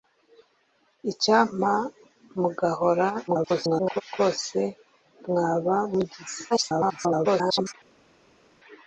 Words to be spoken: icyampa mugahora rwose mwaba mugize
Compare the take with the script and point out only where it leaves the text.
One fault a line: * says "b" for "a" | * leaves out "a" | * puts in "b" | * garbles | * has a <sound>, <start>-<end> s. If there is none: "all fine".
* garbles
* garbles